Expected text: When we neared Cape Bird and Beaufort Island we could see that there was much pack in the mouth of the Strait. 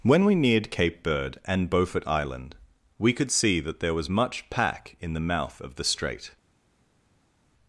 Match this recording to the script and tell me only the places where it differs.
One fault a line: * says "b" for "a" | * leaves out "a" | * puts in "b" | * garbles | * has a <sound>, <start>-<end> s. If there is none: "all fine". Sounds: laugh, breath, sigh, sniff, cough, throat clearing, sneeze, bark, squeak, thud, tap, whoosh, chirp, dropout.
all fine